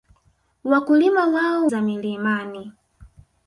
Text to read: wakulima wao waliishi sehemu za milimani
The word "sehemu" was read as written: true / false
false